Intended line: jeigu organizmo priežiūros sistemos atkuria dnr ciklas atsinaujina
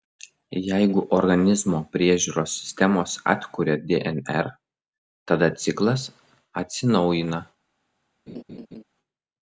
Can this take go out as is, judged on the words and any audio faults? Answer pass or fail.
fail